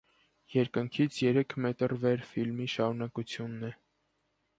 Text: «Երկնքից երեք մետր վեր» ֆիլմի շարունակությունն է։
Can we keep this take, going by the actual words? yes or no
yes